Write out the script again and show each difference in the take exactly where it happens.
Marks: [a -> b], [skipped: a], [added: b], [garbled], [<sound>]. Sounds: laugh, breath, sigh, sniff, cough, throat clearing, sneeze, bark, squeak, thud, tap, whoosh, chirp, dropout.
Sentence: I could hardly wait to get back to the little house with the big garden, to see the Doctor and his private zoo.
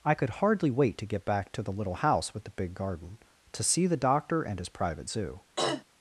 I could hardly wait to get back to the little house with the big garden, to see the Doctor and his private zoo. [throat clearing]